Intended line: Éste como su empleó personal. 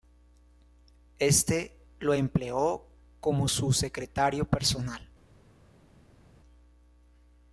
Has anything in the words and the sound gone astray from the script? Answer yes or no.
yes